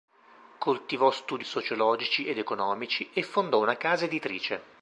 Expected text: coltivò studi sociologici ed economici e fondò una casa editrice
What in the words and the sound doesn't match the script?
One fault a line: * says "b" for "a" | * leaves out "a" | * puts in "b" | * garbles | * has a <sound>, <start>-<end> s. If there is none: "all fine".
all fine